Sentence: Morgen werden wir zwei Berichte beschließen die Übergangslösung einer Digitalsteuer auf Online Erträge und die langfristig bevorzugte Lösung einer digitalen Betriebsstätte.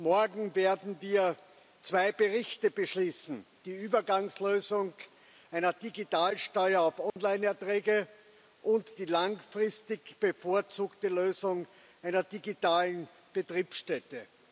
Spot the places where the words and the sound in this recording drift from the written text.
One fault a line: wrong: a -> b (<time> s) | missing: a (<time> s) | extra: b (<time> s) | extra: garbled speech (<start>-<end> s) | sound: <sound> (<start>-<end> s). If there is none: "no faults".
sound: dropout (7.1-7.2 s)